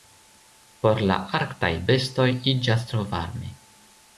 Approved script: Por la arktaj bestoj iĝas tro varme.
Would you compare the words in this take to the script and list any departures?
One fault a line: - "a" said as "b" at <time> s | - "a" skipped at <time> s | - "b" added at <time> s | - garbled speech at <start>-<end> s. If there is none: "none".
none